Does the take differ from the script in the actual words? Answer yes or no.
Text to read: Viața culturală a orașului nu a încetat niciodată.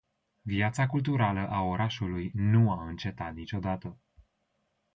no